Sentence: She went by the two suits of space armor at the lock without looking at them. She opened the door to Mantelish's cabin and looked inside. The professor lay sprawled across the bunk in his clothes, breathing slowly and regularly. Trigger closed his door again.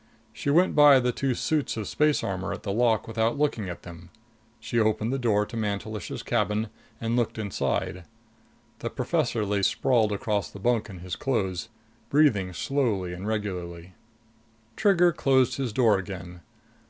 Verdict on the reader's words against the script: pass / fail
pass